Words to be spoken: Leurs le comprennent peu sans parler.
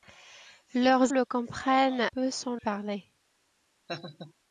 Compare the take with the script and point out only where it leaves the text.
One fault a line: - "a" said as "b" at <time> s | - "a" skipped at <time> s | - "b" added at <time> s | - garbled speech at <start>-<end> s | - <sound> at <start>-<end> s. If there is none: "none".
- laugh at 3.9-4.3 s